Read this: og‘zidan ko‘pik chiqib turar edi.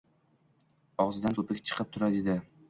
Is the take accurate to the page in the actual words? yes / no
yes